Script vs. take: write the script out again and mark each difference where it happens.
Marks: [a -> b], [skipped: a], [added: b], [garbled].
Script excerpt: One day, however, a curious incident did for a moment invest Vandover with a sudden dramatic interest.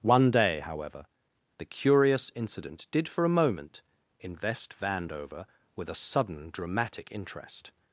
One day, however, [a -> the] curious incident did for a moment invest Vandover with a sudden dramatic interest.